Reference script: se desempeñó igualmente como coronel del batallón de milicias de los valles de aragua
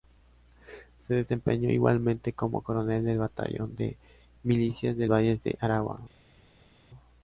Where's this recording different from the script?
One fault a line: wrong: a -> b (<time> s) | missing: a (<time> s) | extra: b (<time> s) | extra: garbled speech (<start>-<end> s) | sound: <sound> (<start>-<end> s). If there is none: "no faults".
missing: los (5.0 s)